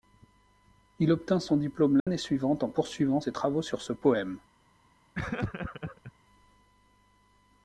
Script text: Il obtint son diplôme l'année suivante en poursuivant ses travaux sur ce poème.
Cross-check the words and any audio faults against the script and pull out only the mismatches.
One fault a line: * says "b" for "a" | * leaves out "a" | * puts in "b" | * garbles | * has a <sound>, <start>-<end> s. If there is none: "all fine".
* has a dropout, 2.0-2.1 s
* has a laugh, 5.1-6.1 s